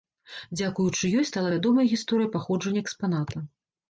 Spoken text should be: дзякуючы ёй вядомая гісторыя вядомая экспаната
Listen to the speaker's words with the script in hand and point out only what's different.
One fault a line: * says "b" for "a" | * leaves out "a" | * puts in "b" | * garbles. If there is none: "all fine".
* puts in "стала"
* says "паходжання" for "вядомая"